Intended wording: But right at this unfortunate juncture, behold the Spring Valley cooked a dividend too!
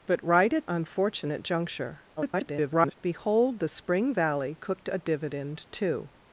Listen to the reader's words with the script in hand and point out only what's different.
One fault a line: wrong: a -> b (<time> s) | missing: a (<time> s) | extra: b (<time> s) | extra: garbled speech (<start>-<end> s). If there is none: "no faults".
missing: this (0.7 s)
extra: garbled speech (2.2-2.9 s)